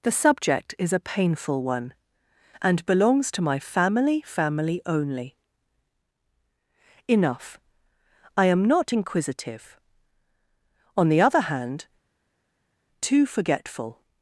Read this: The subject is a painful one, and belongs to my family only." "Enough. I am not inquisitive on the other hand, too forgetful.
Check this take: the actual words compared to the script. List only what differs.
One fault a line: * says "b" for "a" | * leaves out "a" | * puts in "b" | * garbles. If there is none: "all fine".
* puts in "family"